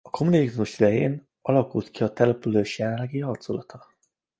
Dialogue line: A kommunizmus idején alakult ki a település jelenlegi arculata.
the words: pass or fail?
pass